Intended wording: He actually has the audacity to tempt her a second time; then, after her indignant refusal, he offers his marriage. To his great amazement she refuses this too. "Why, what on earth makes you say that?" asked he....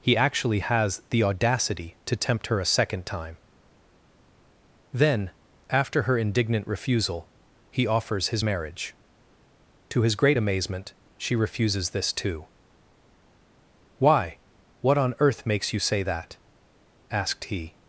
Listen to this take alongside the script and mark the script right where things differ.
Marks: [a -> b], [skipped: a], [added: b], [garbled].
He actually has the audacity to tempt her a second time; then, after her indignant refusal, he offers his marriage. To his great amazement she refuses this too. "Why, what on earth makes you say that?" asked he....